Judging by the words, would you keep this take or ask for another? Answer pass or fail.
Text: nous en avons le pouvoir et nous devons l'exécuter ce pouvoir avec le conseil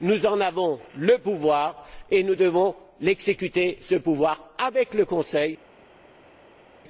pass